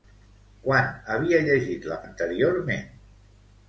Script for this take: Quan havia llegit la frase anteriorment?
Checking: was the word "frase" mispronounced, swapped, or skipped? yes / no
yes